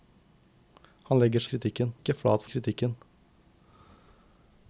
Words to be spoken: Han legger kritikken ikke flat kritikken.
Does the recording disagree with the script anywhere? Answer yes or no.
no